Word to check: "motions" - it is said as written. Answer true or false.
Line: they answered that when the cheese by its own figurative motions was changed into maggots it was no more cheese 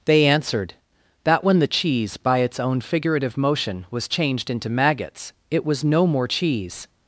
false